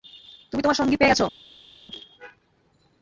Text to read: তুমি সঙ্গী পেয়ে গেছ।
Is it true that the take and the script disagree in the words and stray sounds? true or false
true